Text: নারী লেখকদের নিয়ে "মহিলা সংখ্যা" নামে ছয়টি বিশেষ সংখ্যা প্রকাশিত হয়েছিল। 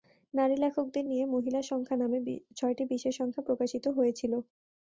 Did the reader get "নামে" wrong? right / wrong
right